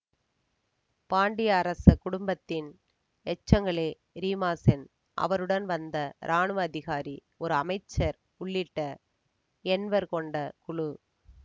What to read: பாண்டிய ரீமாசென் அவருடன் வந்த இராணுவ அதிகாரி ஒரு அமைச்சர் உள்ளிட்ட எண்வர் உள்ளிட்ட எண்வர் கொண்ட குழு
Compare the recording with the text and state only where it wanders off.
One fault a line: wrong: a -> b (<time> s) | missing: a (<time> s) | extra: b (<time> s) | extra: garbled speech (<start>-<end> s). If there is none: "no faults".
extra: அரச குடும்பத்தின் எச்சங்களே (1.6 s)
missing: உள்ளிட்ட எண்வர் (10.1 s)